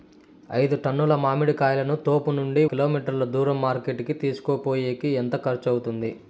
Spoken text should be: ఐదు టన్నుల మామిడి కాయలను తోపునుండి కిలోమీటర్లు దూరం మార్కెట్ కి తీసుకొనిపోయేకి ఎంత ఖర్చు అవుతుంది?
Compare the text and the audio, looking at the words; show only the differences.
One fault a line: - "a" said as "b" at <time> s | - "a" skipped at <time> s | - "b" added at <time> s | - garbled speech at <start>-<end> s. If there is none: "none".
none